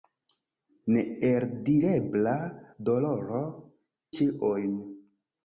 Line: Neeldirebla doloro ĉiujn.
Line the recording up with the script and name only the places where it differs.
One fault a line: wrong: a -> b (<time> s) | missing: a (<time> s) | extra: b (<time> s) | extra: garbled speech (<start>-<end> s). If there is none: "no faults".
no faults